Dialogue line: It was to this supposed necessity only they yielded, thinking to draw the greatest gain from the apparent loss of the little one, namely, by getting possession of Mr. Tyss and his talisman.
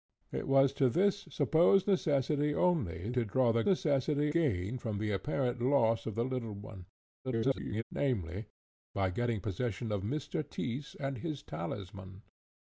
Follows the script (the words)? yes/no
no